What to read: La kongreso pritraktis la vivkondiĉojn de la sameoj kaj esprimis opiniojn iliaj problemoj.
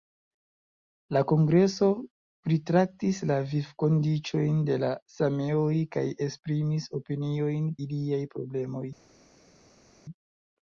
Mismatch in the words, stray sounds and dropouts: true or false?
false